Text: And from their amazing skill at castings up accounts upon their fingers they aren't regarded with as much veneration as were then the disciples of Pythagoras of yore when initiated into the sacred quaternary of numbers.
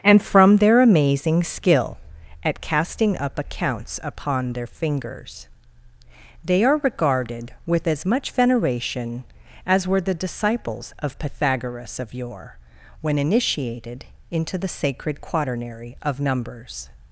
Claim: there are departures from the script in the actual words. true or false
true